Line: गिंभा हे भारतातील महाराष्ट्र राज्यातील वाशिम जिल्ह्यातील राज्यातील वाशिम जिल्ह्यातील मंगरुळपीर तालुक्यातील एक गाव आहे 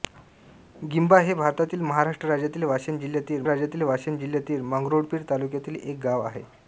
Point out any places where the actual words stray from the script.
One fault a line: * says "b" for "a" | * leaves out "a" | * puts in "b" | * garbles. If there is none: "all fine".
all fine